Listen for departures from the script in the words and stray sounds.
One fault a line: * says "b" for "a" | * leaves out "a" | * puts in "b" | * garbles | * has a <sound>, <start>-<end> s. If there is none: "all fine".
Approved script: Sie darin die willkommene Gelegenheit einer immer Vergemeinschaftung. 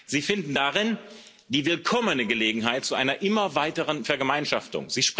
* puts in "finden"
* puts in "zu"
* puts in "weiteren"